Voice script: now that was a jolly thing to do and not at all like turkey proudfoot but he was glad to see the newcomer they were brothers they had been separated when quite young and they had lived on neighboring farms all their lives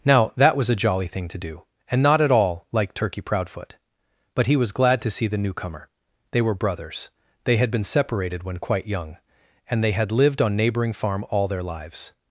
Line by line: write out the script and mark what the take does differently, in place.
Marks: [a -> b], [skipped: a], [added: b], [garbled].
now that was a jolly thing to do and not at all like turkey proudfoot but he was glad to see the newcomer they were brothers they had been separated when quite young and they had lived on neighboring [farms -> farm] all their lives